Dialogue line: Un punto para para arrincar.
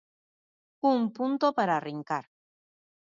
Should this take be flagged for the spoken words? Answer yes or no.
yes